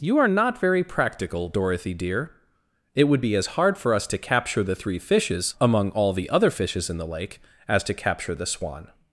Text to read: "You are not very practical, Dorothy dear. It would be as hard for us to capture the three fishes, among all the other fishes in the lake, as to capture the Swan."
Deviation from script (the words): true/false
false